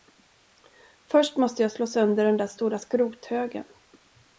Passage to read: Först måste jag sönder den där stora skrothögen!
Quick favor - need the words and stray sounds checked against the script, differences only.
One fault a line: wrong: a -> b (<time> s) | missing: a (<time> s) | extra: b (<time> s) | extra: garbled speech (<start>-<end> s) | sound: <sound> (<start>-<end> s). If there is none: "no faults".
extra: slå (1.7 s)